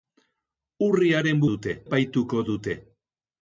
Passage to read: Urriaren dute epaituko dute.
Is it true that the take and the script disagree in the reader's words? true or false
false